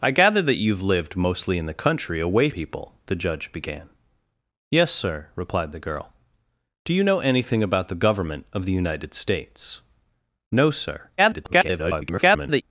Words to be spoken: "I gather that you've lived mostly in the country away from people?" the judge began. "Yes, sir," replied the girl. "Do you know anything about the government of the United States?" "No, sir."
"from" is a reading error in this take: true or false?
true